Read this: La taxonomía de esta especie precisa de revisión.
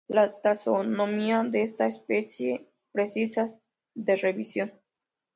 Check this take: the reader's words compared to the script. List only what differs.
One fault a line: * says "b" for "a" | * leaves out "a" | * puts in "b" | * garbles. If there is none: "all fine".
all fine